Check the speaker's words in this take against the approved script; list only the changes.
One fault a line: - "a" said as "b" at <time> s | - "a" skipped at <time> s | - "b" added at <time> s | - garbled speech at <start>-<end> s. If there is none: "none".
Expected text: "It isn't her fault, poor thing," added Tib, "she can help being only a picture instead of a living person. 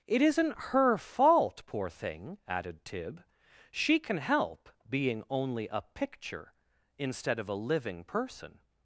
none